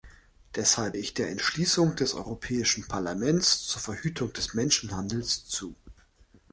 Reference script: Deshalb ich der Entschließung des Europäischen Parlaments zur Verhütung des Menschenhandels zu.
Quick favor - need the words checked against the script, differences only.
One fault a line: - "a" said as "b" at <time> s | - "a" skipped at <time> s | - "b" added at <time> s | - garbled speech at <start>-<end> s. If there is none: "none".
none